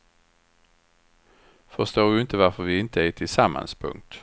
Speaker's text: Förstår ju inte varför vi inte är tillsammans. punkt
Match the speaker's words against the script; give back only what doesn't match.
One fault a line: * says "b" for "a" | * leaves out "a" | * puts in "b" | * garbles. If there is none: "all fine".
all fine